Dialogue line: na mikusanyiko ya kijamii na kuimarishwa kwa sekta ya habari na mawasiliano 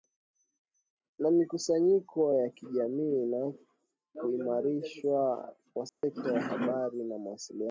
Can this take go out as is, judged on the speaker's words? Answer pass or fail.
pass